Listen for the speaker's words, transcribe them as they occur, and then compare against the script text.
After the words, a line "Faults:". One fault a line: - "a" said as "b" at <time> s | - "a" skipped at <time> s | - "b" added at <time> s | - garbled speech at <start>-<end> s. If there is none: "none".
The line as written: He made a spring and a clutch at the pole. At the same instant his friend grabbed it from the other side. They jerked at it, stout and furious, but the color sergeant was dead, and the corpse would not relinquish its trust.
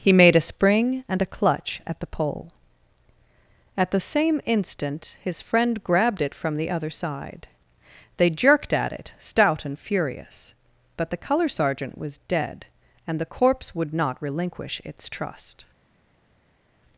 He made a spring and a clutch at the pole. At the same instant his friend grabbed it from the other side. They jerked at it, stout and furious, but the color sergeant was dead, and the corpse would not relinquish its trust.
Faults:
none